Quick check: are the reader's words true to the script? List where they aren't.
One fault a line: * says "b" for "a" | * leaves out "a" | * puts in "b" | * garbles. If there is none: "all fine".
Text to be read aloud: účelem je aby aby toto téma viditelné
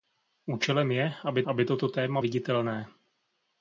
all fine